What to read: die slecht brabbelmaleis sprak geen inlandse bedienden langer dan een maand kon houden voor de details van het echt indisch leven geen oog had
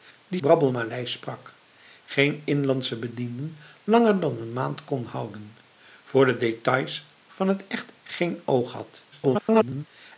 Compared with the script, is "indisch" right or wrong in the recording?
wrong